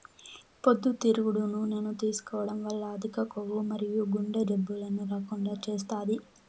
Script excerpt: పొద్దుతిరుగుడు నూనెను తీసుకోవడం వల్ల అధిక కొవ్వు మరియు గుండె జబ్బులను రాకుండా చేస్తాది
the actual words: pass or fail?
pass